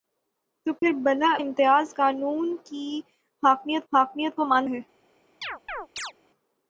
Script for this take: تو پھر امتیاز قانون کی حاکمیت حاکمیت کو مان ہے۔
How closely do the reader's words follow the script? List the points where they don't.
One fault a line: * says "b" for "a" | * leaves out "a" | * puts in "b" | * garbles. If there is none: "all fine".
all fine